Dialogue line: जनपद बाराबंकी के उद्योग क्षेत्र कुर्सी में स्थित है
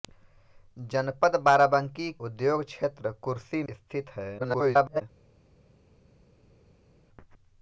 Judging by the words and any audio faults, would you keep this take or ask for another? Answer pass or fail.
fail